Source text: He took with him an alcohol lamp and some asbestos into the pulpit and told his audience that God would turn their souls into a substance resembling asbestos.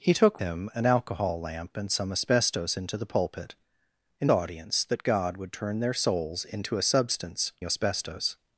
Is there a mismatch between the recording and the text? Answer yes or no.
yes